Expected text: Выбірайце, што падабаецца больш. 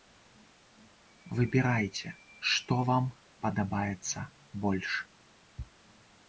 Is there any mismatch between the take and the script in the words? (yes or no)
yes